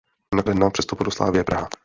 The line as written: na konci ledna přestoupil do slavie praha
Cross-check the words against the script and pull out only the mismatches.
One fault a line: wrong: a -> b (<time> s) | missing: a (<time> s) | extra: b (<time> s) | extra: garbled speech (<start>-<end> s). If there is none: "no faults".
missing: konci (0.4 s)